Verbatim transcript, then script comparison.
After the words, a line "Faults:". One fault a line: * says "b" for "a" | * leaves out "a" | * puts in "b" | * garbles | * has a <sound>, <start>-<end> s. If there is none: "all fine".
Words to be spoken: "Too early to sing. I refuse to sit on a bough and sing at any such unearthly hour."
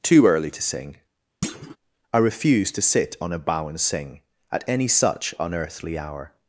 "Too early to sing. I refuse to sit on a bough and sing at any such unearthly hour."
Faults:
* has a thud, 1.4-1.8 s